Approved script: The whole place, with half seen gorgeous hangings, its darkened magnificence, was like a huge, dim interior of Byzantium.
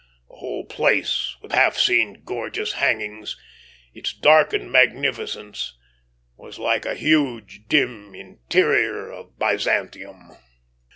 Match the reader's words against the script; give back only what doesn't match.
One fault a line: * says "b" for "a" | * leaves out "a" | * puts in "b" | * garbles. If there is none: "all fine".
all fine